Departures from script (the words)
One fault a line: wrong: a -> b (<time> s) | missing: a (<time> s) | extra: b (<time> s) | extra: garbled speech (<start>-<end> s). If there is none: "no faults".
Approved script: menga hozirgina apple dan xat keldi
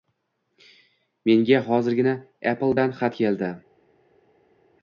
no faults